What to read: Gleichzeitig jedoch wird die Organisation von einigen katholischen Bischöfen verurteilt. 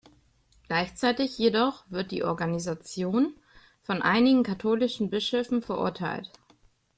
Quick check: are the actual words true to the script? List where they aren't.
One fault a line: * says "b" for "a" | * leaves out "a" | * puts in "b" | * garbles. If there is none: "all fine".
all fine